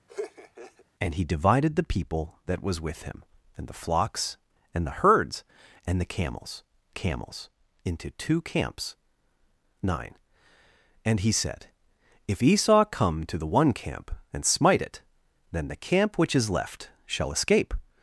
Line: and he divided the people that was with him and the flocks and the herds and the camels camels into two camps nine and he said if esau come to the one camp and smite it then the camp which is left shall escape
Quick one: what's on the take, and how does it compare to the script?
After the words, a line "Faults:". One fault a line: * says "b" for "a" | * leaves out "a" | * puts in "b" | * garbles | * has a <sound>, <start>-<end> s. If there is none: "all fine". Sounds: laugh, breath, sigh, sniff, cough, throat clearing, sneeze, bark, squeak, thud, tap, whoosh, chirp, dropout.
and he divided the people that was with him and the flocks and the herds and the camels camels into two camps nine and he said if esau come to the one camp and smite it then the camp which is left shall escape
Faults:
* has a laugh, 0.1-0.9 s